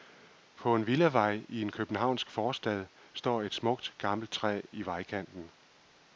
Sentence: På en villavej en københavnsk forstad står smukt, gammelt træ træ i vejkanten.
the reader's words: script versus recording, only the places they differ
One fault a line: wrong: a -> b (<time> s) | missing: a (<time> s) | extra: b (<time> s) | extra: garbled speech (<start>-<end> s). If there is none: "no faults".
extra: i (1.5 s)
extra: et (3.4 s)
missing: træ (4.6 s)